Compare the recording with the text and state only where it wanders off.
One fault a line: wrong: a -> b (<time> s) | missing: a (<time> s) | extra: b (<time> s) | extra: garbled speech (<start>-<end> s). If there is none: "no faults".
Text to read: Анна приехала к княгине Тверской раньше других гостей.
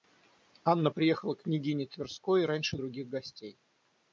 no faults